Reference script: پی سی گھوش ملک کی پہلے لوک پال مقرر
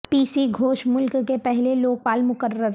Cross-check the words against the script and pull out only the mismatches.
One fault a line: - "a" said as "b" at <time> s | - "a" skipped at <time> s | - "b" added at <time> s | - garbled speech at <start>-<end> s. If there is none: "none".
- "کی" said as "کے" at 1.3 s